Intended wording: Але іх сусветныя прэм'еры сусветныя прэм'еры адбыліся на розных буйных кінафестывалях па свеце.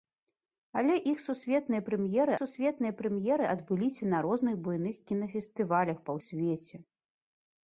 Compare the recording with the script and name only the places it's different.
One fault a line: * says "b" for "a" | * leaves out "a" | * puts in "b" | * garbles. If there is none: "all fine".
all fine